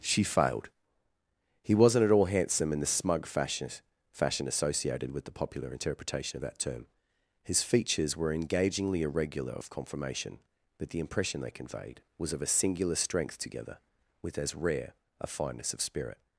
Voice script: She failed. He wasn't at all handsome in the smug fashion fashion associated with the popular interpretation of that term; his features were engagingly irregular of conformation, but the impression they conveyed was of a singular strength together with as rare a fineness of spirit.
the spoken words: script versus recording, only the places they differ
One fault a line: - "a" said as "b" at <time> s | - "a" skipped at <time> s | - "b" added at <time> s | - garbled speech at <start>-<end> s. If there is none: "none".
none